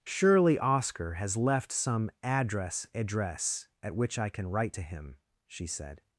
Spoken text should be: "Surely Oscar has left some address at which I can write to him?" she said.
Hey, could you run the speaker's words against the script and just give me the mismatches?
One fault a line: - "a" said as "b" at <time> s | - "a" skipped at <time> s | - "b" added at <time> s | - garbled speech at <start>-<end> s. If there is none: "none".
- "address" added at 2.9 s